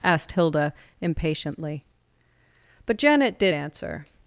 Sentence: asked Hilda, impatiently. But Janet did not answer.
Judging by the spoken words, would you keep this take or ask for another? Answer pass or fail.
fail